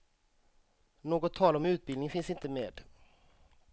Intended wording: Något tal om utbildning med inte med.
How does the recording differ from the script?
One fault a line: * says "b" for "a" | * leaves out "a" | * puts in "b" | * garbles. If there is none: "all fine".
* says "finns" for "med"